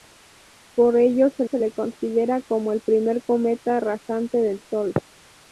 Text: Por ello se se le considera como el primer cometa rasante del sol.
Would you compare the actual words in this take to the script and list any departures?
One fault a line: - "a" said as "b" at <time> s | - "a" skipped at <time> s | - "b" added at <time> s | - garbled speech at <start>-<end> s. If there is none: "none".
none